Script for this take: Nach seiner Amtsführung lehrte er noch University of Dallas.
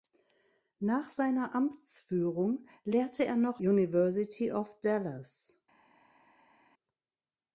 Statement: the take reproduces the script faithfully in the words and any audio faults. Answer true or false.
true